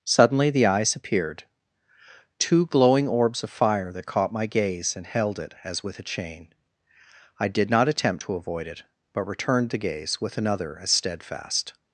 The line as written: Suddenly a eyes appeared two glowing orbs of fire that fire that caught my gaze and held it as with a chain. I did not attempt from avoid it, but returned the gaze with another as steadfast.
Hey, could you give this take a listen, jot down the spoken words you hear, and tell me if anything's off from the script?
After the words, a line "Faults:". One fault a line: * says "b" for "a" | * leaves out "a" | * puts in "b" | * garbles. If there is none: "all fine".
Suddenly the eyes appeared two glowing orbs of fire that caught my gaze and held it as with a chain. I did not attempt to avoid it, but returned the gaze with another as steadfast.
Faults:
* says "the" for "a"
* leaves out "fire that"
* says "to" for "from"